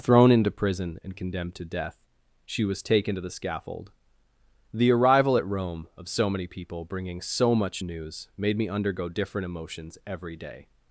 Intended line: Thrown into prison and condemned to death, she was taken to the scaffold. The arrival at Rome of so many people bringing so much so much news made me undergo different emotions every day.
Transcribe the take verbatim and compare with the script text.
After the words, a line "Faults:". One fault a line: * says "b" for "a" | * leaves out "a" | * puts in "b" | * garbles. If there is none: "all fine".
Thrown into prison and condemned to death, she was taken to the scaffold. The arrival at Rome of so many people bringing so much news made me undergo different emotions every day.
Faults:
* leaves out "so much"